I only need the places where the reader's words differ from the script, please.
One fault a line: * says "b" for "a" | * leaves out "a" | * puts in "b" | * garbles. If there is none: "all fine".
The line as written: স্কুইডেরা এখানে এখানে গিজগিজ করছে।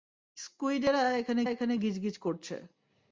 all fine